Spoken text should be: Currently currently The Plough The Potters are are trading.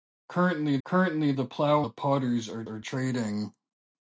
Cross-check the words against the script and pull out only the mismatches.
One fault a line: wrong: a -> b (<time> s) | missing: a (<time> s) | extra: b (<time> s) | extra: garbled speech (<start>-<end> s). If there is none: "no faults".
no faults